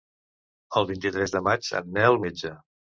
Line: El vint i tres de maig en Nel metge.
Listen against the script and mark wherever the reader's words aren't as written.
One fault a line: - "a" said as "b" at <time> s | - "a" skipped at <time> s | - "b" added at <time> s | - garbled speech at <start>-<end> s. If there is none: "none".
none